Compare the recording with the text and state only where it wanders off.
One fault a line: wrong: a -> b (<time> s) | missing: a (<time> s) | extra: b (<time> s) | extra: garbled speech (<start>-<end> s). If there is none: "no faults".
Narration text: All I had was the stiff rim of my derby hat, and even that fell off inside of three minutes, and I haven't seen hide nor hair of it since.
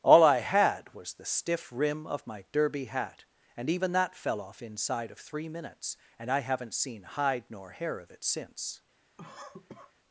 no faults